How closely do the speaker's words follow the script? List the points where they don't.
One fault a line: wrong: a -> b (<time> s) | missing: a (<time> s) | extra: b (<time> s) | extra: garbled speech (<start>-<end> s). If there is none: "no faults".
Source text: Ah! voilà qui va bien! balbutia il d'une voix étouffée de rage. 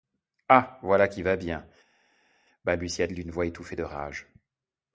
no faults